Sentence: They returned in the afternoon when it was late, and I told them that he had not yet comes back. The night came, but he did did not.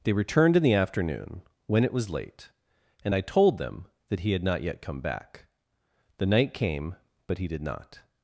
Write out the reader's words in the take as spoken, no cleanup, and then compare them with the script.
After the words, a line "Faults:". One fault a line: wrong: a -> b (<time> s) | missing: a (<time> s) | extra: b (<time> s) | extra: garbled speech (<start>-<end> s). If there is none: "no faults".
They returned in the afternoon when it was late, and I told them that he had not yet come back. The night came, but he did not.
Faults:
wrong: comes -> come (4.8 s)
missing: did (7.6 s)